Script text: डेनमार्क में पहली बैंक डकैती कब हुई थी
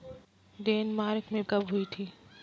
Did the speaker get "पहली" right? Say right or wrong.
wrong